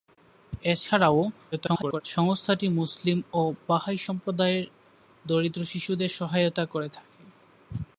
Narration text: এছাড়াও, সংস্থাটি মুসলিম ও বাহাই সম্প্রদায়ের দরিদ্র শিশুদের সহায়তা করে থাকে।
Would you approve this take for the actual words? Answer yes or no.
no